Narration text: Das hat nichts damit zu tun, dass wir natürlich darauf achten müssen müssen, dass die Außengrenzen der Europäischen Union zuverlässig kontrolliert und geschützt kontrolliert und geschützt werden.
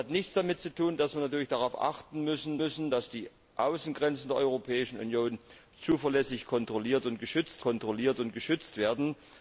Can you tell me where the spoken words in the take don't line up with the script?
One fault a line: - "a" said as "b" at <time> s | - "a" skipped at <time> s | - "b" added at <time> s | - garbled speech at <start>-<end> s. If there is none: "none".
none